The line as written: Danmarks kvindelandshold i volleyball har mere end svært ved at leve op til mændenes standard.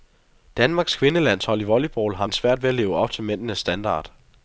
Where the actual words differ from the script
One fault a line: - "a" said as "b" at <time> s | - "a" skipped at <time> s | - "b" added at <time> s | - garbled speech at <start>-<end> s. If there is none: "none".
- "mere" skipped at 2.3 s